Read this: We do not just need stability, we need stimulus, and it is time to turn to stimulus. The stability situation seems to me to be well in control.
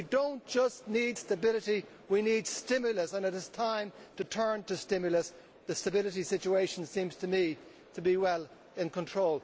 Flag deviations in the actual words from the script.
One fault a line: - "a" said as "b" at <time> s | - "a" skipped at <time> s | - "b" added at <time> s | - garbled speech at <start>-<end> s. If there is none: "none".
none